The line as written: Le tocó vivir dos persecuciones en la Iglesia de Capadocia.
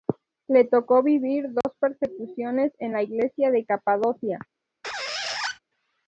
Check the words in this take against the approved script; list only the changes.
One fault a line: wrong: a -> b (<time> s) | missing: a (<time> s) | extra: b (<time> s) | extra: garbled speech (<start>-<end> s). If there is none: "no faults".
no faults